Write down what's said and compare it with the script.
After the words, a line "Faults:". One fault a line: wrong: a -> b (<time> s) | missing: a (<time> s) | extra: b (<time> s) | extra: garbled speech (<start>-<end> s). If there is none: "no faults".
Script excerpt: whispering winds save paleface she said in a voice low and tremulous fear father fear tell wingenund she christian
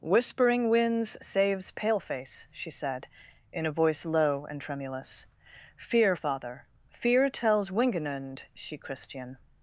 whispering winds saves paleface she said in a voice low and tremulous fear father fear tells wingenund she christian
Faults:
wrong: save -> saves (1.2 s)
wrong: tell -> tells (7.3 s)